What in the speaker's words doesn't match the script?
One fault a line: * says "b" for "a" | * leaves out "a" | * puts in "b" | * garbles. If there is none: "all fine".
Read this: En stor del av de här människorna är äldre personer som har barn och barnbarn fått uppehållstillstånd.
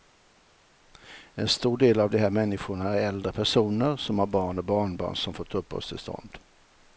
* puts in "som"